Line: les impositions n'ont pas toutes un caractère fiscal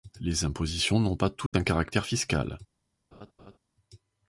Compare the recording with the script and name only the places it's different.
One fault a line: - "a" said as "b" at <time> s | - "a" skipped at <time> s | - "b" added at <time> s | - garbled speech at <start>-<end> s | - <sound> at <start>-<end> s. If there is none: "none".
- dropout at 1.5-1.5 s
- laugh at 3.1-3.6 s